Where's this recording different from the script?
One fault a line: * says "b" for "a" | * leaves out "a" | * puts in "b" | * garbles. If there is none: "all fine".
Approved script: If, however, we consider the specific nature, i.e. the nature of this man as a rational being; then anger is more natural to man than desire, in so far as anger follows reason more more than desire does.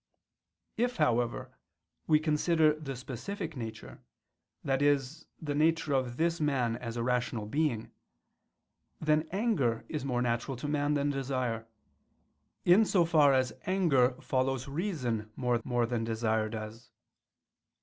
all fine